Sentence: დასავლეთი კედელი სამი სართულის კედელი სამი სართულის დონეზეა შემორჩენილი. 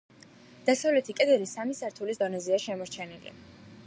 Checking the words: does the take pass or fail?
fail